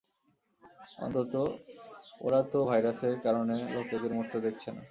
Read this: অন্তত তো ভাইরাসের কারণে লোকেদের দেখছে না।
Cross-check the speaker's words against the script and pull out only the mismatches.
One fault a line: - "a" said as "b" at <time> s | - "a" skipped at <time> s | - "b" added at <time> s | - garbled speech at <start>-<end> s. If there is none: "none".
- "ওরা" added at 2.2 s
- "মরতে" added at 4.2 s